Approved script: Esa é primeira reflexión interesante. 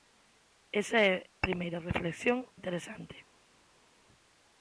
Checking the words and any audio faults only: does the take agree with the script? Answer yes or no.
yes